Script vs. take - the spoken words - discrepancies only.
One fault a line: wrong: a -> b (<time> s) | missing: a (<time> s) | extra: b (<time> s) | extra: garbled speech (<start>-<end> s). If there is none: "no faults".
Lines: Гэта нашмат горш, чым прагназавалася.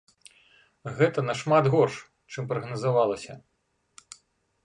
no faults